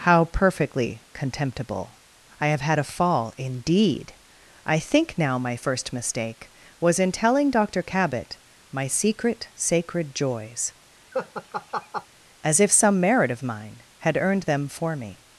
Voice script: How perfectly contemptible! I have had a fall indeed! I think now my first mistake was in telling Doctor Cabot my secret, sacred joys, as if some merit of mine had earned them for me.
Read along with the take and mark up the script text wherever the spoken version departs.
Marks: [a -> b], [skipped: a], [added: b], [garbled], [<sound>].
How perfectly contemptible! I have had a fall indeed! I think now my first mistake was in telling Doctor Cabot my secret, sacred joys, [laugh] as if some merit of mine had earned them for me.